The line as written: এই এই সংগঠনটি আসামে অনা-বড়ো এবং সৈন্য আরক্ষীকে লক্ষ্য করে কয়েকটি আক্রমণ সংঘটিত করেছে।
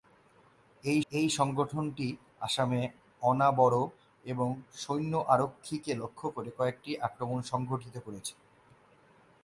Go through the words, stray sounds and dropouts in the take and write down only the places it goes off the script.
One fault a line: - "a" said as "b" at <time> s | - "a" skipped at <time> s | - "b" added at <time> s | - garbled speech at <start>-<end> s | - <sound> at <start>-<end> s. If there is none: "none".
none